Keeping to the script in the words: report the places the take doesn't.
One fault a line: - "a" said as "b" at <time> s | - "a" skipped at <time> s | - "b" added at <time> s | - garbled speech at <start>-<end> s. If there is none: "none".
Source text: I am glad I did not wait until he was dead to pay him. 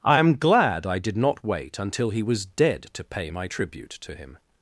- "my tribute to" added at 3.3 s